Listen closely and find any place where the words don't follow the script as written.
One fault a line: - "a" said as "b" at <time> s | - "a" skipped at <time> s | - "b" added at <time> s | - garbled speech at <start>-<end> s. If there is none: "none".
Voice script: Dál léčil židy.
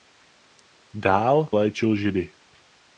none